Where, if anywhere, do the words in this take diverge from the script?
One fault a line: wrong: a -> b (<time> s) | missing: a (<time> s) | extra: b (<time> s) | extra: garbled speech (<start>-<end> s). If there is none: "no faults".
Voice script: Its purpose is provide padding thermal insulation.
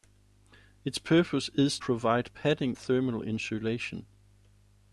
no faults